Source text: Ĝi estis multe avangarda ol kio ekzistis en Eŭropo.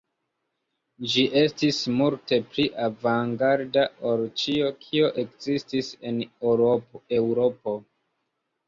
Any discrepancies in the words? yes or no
yes